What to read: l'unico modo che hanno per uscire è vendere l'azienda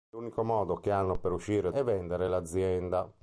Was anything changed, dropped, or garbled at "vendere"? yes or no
no